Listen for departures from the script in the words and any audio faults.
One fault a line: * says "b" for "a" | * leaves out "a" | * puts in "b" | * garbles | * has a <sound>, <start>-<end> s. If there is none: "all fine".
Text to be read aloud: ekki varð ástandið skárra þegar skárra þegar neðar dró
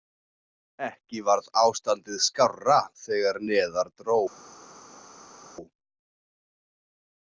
* leaves out "skárra þegar"